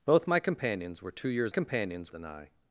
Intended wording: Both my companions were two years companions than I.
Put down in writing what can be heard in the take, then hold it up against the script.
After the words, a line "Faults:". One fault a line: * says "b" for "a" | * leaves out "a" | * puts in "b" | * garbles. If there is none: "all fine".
Both my companions were two years companions than I.
Faults:
all fine